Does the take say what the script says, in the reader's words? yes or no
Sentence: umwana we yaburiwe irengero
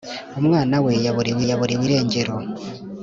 no